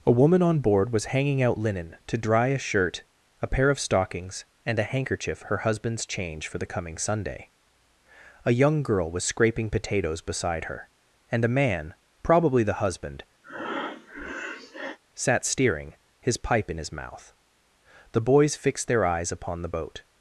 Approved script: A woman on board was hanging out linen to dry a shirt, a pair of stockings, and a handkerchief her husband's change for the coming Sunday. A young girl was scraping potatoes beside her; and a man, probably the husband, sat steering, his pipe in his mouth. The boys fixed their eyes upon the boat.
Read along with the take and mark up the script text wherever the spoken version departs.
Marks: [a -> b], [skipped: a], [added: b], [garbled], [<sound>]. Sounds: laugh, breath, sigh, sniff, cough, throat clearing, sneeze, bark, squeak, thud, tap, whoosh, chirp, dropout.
A woman on board was hanging out linen to dry a shirt, a pair of stockings, and a handkerchief her husband's change for the coming Sunday. A young girl was scraping potatoes beside her; and a man, probably the husband, [breath] sat steering, his pipe in his mouth. The boys fixed their eyes upon the boat.